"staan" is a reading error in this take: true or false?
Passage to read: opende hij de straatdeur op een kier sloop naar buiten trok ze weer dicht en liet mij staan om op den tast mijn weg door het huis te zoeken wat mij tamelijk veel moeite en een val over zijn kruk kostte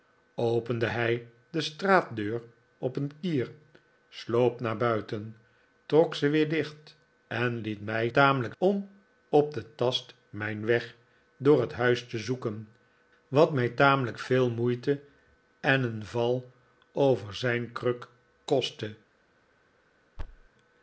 true